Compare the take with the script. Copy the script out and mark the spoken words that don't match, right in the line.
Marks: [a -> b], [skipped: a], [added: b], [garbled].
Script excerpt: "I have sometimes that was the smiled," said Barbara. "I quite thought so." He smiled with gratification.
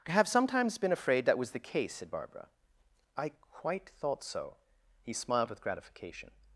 "I have sometimes [added: been afraid] that was the [smiled," -> case] said Barbara. "I quite thought so." He smiled with gratification.